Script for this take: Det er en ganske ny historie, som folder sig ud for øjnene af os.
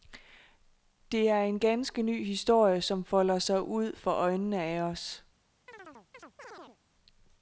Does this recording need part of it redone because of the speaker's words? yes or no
no